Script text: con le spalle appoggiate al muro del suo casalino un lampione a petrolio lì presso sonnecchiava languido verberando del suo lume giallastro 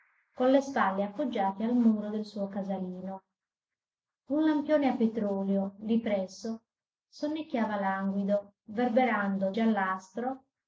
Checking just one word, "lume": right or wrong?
wrong